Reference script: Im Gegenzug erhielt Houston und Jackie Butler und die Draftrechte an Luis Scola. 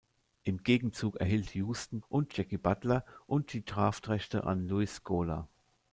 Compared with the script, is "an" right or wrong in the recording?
right